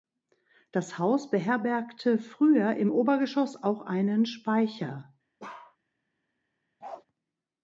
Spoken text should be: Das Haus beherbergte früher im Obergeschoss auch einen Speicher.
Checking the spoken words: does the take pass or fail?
pass